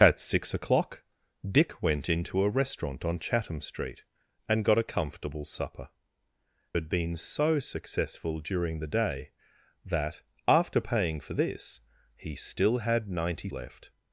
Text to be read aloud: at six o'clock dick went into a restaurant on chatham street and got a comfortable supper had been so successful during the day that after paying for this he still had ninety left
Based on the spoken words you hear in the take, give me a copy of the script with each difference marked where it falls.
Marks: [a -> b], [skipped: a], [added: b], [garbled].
at six o'clock dick went into a restaurant on chatham street and got a comfortable supper had been so successful during the day that after paying for this he still had ninety left